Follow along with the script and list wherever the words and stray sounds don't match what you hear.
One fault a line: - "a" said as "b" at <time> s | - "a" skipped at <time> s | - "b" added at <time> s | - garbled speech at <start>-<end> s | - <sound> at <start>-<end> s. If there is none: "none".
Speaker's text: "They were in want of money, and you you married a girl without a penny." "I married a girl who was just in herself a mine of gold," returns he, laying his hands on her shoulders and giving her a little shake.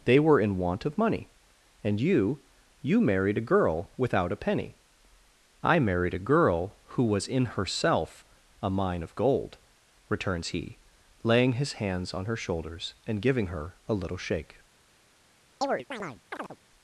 - "just" skipped at 7.3 s
- chirp at 15.6-16.6 s